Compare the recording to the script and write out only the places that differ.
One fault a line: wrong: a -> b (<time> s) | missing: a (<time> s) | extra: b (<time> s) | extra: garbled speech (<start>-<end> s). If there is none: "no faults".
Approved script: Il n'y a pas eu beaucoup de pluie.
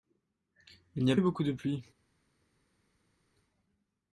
missing: pas (1.1 s)